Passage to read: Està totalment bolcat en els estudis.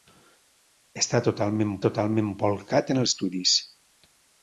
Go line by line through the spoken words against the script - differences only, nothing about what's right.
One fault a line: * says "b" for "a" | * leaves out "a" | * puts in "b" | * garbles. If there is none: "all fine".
* puts in "totalment"
* leaves out "els"